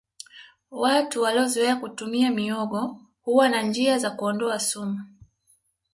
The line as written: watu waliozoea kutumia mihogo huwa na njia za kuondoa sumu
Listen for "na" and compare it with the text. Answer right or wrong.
right